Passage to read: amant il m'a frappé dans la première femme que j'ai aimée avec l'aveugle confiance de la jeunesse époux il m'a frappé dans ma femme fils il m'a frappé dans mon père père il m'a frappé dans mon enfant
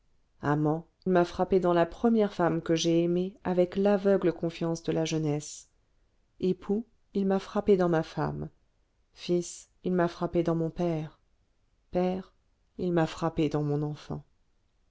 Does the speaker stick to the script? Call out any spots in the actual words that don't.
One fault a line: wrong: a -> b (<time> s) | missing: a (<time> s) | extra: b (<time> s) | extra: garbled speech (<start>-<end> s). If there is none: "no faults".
missing: il (0.9 s)